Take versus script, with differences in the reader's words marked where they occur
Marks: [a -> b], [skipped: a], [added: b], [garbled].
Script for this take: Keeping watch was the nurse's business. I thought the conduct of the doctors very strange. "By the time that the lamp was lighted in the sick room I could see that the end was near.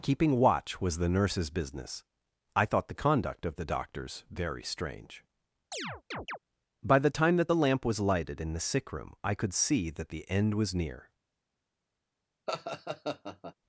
Keeping watch was the nurse's business. I thought the conduct of the doctors very strange. "By the time that the lamp was lighted in the sick room I could see that the end was near.